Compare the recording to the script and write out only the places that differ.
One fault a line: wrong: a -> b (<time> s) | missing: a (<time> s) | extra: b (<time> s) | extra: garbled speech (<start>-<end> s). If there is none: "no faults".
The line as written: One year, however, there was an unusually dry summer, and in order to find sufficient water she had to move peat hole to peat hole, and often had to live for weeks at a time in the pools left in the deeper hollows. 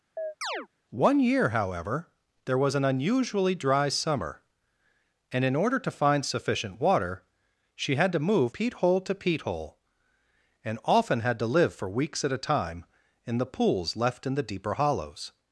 no faults